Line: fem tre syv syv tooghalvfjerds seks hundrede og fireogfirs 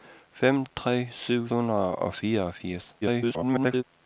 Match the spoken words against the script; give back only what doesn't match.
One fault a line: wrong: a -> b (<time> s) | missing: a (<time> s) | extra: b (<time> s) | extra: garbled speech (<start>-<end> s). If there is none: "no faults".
missing: syv tooghalvfjerds seks (1.5 s)
extra: garbled speech (3.0-3.8 s)